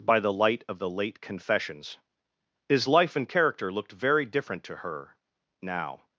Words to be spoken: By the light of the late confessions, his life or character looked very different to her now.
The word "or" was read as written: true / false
false